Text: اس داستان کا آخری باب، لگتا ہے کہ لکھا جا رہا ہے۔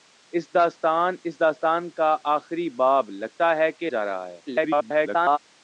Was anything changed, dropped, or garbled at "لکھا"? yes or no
yes